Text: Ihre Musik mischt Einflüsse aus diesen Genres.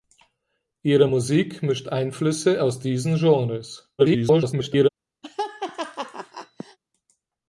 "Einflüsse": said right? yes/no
yes